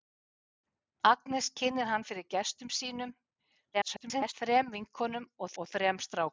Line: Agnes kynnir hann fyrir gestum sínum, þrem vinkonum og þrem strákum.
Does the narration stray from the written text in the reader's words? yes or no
yes